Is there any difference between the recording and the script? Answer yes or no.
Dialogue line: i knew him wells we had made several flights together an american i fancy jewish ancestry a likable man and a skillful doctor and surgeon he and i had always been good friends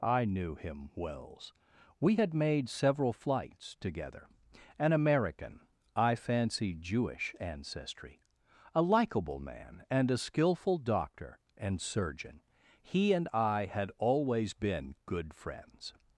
no